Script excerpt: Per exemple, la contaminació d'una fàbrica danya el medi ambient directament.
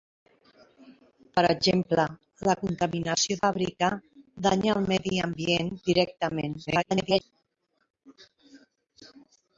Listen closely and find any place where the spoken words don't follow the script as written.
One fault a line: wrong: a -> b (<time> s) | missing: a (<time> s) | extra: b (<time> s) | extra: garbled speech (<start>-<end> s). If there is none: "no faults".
missing: d'una (3.4 s)
extra: garbled speech (6.7-7.2 s)